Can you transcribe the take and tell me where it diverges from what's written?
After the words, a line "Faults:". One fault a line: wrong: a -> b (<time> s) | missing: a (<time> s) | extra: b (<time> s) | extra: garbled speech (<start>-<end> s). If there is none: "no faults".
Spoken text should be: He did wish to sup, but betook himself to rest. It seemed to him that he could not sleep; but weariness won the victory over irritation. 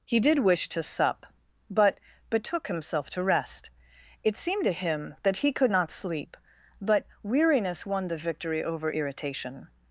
He did wish to sup, but betook himself to rest. It seemed to him that he could not sleep; but weariness won the victory over irritation.
Faults:
no faults